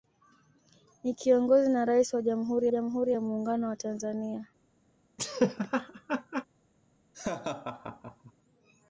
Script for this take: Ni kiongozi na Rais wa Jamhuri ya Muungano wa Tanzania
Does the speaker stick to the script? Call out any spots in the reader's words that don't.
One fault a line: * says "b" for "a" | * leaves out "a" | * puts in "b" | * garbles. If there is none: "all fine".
* puts in "Jamhuri"